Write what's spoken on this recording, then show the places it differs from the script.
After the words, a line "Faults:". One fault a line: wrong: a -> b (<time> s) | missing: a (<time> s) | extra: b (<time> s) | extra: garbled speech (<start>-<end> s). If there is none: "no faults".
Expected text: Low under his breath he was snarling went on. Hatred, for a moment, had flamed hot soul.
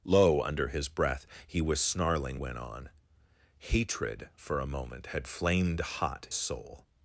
Low under his breath he was snarling went on. Hatred, for a moment, had flamed hot soul.
Faults:
no faults